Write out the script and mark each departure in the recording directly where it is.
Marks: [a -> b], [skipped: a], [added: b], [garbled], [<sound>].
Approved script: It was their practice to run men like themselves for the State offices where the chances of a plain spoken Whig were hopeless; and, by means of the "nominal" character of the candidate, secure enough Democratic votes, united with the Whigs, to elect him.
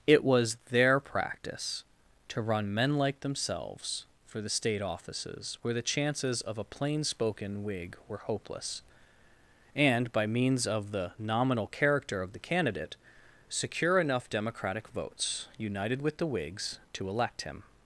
It was their practice to run men like themselves for the State offices where the chances of a plain spoken Whig were hopeless; and, by means of the "nominal" character of the candidate, secure enough Democratic votes, united with the Whigs, to elect him.